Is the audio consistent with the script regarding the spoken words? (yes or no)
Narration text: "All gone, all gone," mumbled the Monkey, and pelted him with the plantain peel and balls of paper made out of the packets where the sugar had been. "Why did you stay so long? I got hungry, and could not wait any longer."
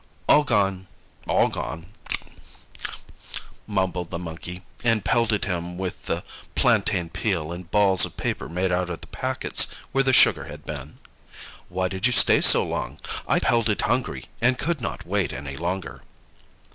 no